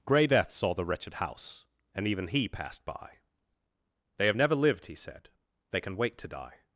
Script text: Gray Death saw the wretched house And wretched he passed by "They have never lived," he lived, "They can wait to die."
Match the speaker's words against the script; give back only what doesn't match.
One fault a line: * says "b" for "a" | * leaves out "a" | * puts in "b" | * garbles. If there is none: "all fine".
* says "even" for "wretched"
* says "said" for "lived"